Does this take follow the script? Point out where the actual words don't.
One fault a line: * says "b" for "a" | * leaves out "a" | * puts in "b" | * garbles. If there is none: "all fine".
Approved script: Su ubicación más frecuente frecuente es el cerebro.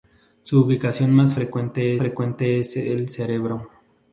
all fine